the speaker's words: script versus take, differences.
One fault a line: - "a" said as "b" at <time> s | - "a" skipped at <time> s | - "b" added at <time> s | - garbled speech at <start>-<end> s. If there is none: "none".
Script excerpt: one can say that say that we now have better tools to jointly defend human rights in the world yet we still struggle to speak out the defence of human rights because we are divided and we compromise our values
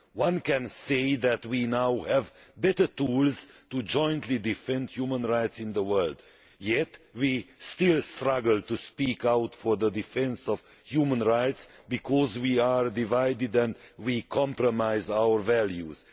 - "say that" skipped at 1.4 s
- "for" added at 9.6 s